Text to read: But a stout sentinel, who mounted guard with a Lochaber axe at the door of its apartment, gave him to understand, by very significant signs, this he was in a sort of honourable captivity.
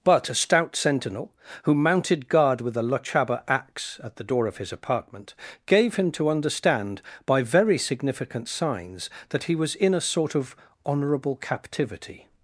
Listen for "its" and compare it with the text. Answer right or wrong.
wrong